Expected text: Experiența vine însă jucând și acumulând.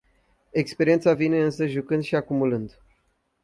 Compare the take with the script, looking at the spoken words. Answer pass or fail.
pass